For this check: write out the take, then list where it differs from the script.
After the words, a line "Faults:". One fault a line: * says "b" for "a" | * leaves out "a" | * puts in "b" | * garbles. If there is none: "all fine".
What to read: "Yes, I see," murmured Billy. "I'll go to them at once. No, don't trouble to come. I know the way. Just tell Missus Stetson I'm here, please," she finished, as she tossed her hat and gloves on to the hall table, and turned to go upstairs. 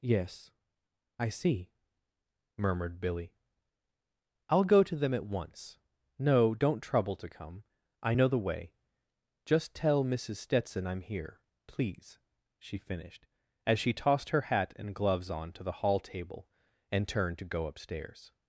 "Yes, I see," murmured Billy. "I'll go to them at once. No, don't trouble to come. I know the way. Just tell Missus Stetson I'm here, please," she finished, as she tossed her hat and gloves on to the hall table, and turned to go upstairs.
Faults:
all fine